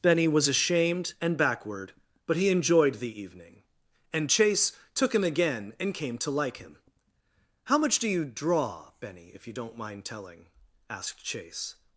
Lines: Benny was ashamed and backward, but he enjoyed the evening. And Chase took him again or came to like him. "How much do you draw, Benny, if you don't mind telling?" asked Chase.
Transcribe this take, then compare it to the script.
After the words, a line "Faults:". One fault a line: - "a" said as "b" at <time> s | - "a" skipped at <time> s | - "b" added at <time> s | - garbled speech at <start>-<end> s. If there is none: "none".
Benny was ashamed and backward, but he enjoyed the evening. And Chase took him again and came to like him. "How much do you draw, Benny, if you don't mind telling?" asked Chase.
Faults:
- "or" said as "and" at 5.8 s